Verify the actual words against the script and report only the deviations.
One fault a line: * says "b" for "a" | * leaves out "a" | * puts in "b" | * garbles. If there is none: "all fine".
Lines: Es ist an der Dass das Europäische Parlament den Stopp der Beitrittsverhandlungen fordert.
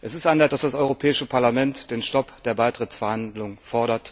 all fine